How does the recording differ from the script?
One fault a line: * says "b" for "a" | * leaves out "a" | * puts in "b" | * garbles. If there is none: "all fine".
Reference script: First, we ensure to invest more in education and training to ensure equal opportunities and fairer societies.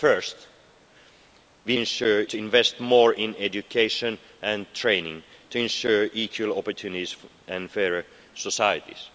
all fine